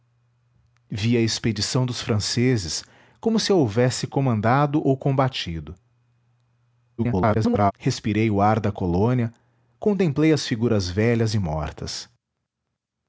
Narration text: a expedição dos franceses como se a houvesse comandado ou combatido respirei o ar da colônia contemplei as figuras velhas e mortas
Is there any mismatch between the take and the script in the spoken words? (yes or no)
yes